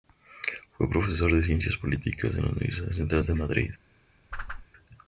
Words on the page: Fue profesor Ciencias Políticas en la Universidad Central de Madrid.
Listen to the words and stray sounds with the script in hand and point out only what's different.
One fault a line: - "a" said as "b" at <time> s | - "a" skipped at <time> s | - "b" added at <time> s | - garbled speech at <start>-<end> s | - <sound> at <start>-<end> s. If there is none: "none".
- "de" added at 1.3 s
- whoosh at 4.3-4.7 s